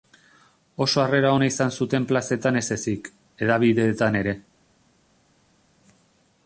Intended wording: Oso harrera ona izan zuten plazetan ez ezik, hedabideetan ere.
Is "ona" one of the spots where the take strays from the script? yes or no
no